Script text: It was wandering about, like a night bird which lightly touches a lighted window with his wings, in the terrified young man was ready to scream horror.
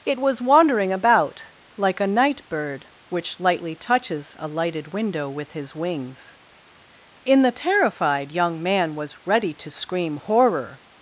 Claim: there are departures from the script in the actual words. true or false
false